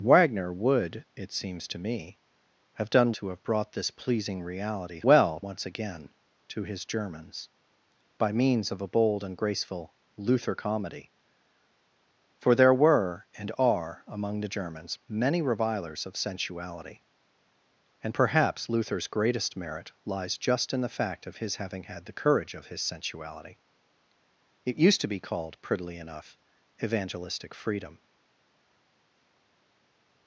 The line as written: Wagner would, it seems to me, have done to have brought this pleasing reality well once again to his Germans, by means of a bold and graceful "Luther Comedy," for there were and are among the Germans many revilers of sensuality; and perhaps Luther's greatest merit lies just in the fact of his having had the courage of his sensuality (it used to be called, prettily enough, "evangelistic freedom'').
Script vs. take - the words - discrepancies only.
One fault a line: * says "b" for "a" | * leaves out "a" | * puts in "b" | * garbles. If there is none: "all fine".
all fine